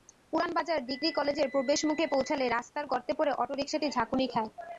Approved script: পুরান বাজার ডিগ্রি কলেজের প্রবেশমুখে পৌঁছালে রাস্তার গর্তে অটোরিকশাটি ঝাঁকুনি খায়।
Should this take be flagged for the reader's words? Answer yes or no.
yes